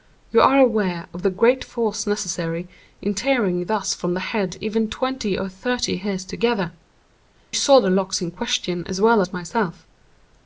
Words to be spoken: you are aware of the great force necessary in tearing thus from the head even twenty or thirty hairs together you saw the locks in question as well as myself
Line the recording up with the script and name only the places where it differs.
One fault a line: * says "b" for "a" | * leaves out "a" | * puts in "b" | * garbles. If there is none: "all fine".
* leaves out "you"